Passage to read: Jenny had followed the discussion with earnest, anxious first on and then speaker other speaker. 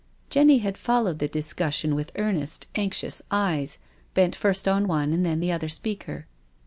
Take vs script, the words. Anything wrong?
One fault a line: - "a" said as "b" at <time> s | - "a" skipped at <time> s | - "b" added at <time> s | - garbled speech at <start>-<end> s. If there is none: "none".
- "eyes bent" added at 3.3 s
- "one" added at 4.9 s
- "speaker" said as "the" at 5.4 s